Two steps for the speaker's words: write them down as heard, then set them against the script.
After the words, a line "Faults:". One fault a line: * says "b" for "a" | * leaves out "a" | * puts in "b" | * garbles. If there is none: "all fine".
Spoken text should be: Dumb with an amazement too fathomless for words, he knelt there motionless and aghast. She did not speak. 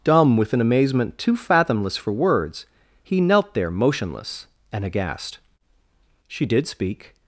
Dumb with an amazement too fathomless for words, he knelt there motionless and aghast. She did speak.
Faults:
* leaves out "not"